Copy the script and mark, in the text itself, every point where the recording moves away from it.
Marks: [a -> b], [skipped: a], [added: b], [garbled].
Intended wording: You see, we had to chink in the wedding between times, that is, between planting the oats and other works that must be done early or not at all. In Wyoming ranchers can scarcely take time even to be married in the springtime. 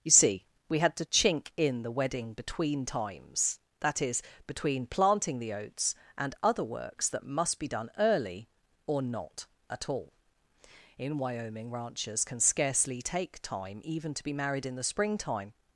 You see, we had to chink in the wedding between times, that is, between planting the oats and other works that must be done early or not at all. In Wyoming ranchers can scarcely take time even to be married in the springtime.